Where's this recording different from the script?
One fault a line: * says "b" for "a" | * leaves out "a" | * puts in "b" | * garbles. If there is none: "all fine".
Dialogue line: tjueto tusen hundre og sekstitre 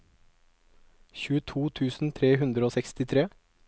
* puts in "tre"